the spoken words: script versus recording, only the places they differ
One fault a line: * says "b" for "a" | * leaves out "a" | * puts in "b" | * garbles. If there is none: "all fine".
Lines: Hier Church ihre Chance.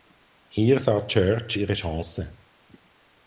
* puts in "sah"